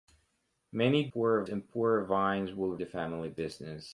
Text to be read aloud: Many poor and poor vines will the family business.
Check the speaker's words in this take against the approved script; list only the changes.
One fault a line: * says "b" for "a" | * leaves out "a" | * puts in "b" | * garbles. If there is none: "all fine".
all fine